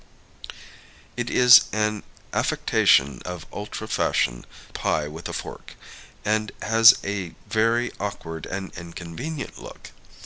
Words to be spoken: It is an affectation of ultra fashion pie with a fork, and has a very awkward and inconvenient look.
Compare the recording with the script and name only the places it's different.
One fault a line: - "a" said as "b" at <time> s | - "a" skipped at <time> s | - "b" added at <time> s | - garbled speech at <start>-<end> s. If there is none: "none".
none